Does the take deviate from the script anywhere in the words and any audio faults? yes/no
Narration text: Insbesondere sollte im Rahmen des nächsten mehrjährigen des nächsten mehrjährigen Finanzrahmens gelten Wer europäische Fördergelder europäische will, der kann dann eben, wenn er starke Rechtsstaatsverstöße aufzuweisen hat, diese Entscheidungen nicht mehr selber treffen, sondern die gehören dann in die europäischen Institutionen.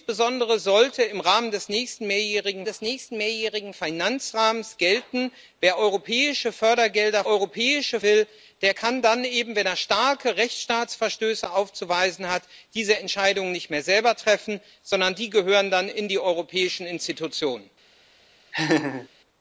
yes